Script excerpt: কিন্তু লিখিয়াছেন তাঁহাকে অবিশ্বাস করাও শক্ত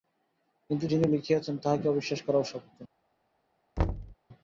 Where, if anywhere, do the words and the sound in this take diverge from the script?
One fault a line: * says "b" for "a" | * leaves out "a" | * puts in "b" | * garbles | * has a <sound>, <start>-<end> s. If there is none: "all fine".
* puts in "যিনি"
* has a thud, 3.8-4.2 s